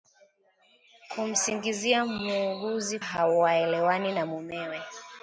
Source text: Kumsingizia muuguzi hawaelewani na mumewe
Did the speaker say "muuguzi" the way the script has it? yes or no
yes